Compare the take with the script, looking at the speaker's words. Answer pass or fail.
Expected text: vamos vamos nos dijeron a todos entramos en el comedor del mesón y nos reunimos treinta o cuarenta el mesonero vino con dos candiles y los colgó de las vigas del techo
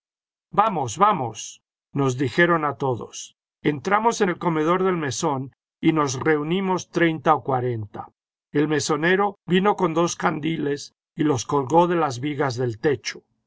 pass